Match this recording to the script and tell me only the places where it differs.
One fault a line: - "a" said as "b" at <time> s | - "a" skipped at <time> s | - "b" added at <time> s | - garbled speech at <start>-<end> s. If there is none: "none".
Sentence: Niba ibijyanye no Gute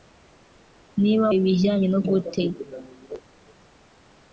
none